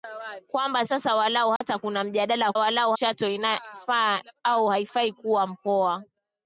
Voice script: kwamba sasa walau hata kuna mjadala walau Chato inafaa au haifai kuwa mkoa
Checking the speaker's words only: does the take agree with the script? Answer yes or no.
yes